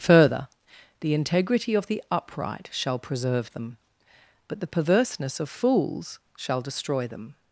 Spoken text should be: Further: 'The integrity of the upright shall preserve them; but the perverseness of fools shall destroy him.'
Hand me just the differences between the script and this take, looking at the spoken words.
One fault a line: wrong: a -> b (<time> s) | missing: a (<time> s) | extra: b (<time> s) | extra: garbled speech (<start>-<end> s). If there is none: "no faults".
wrong: him -> them (7.1 s)